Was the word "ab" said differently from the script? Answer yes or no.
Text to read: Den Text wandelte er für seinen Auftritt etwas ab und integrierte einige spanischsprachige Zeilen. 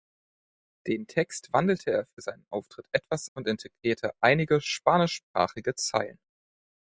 yes